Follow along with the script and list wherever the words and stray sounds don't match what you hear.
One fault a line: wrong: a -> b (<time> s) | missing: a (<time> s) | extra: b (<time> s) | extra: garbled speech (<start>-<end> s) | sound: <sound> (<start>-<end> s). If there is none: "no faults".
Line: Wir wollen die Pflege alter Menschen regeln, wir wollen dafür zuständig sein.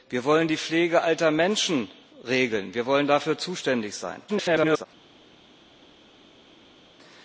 extra: garbled speech (4.3-4.9 s)